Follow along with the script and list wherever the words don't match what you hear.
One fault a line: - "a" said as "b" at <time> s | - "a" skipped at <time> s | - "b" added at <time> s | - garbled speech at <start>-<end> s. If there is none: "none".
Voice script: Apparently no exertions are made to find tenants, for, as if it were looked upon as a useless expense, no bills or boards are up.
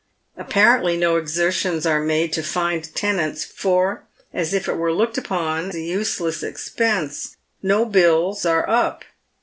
- "as" skipped at 5.7 s
- "or boards" skipped at 8.4 s